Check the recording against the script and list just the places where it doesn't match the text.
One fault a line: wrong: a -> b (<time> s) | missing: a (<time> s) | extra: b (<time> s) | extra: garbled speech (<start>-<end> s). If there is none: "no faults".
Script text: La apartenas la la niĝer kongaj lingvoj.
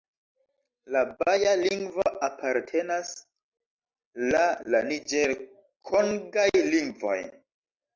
extra: baja lingvo (1.2 s)